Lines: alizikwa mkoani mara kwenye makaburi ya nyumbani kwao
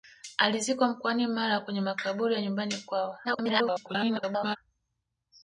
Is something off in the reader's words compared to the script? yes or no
yes